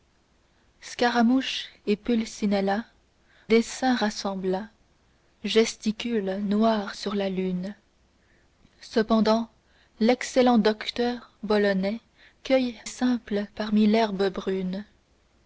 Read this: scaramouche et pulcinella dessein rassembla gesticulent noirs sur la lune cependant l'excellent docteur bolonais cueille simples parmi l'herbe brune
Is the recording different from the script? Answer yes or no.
no